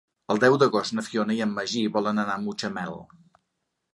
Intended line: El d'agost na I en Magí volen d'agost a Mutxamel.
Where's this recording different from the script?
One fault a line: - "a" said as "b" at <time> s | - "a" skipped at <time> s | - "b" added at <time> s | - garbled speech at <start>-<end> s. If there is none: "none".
- "deu" added at 0.4 s
- "Fiona" added at 1.1 s
- "d'agost" said as "anar" at 2.2 s